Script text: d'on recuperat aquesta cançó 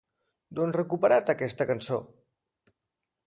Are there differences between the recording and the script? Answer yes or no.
no